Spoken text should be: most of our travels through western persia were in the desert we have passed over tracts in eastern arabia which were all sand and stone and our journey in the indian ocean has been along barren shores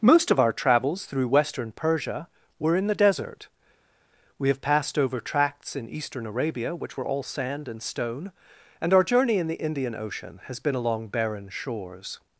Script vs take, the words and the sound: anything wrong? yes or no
no